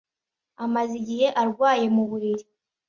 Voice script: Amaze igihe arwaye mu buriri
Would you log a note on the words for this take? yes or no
no